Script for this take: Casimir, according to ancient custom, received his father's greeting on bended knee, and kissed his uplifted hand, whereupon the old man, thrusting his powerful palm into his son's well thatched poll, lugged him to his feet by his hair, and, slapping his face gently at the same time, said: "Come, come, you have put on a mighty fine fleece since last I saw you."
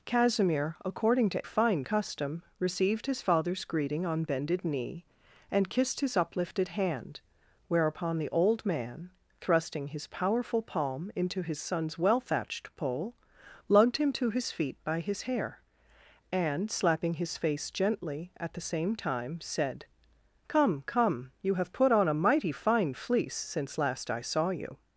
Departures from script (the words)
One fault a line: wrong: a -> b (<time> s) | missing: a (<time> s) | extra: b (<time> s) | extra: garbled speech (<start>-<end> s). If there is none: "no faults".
wrong: ancient -> fine (1.4 s)